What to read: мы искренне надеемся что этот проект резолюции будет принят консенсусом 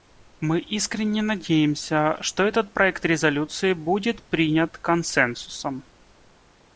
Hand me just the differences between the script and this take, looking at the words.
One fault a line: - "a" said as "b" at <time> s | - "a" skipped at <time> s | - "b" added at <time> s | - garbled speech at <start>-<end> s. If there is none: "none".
none